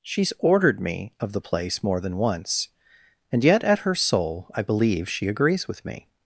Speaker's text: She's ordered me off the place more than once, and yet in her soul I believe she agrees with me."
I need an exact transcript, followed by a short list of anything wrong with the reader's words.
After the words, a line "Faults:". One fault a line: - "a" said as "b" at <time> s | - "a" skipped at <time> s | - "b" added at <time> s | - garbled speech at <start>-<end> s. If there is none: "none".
She's ordered me of the place more than once, and yet at her soul I believe she agrees with me."
Faults:
- "off" said as "of" at 1.2 s
- "in" said as "at" at 3.6 s